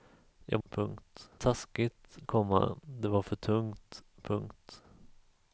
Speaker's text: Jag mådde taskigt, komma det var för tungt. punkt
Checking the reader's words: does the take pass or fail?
fail